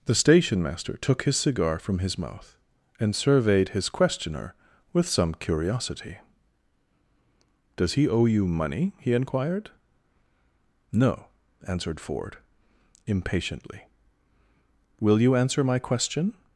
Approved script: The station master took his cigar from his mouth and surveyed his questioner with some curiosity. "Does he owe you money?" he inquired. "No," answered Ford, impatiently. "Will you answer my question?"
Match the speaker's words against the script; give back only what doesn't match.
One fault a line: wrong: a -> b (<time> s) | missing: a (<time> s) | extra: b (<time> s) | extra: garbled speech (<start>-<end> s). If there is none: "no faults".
no faults